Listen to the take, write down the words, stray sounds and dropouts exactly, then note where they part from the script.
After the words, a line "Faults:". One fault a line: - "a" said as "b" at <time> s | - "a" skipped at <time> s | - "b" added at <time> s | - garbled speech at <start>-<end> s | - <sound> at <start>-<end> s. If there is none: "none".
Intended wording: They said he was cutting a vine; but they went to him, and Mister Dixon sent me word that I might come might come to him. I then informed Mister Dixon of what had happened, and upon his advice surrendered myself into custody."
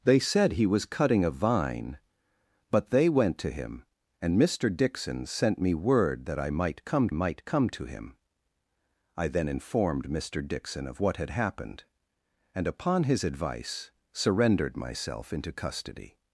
They said he was cutting a vine; but they went to him, and Mister Dixon sent me word that I might come might come to him. I then informed Mister Dixon of what had happened, and upon his advice surrendered myself into custody."
Faults:
none